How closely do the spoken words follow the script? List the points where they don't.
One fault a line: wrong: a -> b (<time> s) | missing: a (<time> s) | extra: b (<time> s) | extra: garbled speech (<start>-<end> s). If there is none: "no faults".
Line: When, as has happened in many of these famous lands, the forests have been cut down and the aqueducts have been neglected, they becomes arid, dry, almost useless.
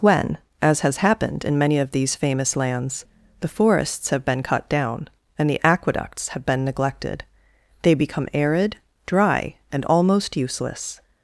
wrong: becomes -> become (7.9 s)
extra: and (9.7 s)